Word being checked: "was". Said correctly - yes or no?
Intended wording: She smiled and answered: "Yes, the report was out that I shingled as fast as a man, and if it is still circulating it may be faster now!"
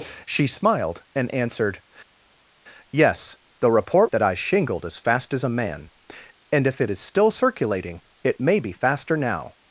no